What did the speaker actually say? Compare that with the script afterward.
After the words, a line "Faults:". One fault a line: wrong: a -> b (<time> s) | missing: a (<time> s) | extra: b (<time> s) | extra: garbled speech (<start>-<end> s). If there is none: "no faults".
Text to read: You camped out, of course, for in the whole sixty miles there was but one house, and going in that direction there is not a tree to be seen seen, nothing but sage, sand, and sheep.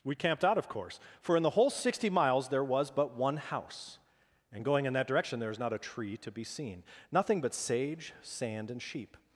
We camped out, of course, for in the whole sixty miles there was but one house, and going in that direction there is not a tree to be seen, nothing but sage, sand, and sheep.
Faults:
wrong: You -> We (0.0 s)
missing: seen (6.8 s)